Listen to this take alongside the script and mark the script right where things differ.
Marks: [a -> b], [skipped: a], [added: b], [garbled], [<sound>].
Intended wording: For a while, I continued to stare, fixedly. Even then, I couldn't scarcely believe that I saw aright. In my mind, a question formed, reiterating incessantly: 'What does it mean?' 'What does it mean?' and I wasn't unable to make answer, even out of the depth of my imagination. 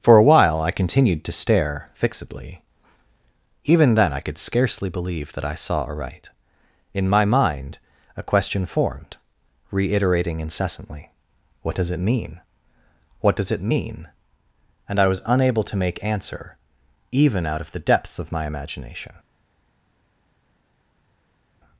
For a while, I continued to stare, fixedly. Even then, I [couldn't -> could] scarcely believe that I saw aright. In my mind, a question formed, reiterating incessantly: 'What does it mean?' 'What does it mean?' and I [wasn't -> was] unable to make answer, even out of the [depth -> depths] of my imagination.